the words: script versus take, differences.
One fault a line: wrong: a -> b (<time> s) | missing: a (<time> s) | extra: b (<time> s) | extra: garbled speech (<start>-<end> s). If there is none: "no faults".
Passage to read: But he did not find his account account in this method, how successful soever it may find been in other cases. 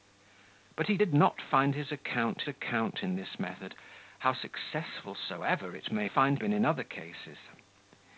no faults